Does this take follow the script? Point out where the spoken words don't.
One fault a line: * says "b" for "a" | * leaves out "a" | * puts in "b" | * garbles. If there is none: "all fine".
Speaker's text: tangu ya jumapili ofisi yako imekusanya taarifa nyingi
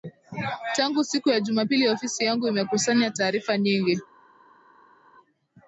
* puts in "siku"
* says "yangu" for "yako"